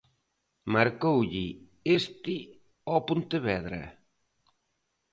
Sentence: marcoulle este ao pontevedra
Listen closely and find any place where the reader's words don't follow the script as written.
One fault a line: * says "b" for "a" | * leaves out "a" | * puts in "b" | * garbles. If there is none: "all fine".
all fine